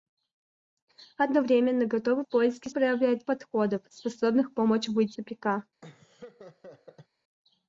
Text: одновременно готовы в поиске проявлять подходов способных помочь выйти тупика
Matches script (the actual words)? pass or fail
pass